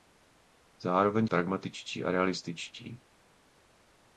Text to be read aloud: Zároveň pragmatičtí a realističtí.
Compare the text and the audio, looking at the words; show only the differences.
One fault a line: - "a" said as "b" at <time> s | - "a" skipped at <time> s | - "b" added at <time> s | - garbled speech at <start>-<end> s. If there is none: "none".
none